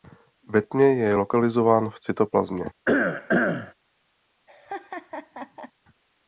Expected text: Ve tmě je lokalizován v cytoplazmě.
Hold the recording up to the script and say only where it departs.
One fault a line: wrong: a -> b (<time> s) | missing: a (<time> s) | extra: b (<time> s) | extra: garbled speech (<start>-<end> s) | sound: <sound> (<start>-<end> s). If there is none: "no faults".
sound: cough (2.9-3.7 s)
sound: laugh (4.5-5.7 s)